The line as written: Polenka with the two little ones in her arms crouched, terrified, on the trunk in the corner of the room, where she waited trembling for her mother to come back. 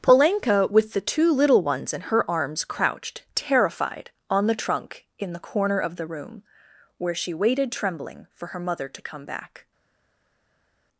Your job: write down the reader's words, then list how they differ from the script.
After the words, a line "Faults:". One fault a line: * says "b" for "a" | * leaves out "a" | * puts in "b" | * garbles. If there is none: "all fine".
Polenka with the two little ones in her arms crouched, terrified, on the trunk in the corner of the room, where she waited trembling for her mother to come back.
Faults:
all fine